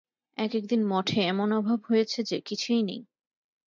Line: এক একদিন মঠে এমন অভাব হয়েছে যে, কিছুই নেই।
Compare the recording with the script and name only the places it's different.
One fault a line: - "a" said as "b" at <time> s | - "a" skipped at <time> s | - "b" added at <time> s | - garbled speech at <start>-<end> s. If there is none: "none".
none